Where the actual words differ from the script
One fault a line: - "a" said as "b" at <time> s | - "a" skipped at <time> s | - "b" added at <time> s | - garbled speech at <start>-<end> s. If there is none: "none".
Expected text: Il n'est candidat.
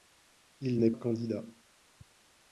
none